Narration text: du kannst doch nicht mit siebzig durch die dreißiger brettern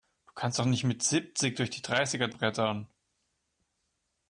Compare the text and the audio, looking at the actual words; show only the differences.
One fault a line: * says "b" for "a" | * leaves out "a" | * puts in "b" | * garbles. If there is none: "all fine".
all fine